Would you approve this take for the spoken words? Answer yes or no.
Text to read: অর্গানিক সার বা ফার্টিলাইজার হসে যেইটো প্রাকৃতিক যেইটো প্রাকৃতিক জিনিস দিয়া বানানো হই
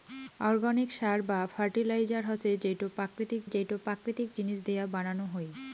yes